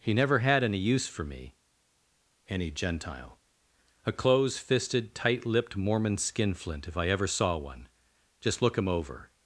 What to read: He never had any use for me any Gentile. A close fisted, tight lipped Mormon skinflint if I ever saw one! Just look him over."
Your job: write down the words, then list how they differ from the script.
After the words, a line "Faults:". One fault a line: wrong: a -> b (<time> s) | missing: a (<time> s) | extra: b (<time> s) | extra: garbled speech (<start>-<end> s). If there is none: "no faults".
He never had any use for me any Gentile. A close fisted, tight lipped Mormon skinflint if I ever saw one! Just look him over."
Faults:
no faults